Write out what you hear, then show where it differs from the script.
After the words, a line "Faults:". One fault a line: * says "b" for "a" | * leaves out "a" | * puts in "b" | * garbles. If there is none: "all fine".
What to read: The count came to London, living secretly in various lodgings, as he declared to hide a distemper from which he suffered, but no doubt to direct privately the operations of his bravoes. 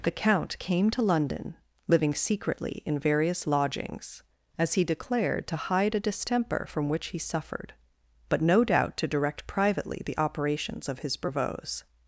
The count came to London, living secretly in various lodgings, as he declared to hide a distemper from which he suffered, but no doubt to direct privately the operations of his bravoes.
Faults:
all fine